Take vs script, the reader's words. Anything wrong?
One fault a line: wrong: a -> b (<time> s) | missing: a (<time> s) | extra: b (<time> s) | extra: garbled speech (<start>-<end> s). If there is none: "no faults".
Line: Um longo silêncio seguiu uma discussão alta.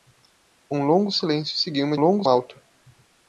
wrong: discussão -> longo (2.0 s)